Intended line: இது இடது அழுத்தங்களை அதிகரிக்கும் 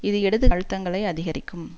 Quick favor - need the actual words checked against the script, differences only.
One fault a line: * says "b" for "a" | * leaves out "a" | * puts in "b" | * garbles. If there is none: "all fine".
all fine